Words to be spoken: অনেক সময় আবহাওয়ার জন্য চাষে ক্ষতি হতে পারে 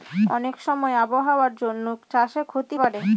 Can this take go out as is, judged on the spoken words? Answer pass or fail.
fail